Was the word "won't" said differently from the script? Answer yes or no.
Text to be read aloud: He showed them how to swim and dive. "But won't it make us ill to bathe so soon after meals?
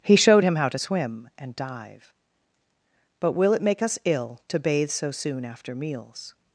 yes